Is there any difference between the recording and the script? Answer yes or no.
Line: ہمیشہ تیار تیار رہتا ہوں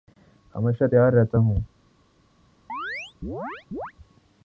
yes